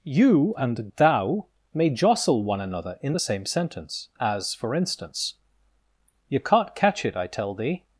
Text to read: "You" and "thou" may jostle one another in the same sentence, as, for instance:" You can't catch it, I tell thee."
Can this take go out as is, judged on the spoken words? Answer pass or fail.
pass